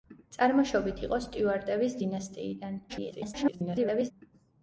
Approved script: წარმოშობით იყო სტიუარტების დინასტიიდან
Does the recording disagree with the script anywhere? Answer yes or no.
yes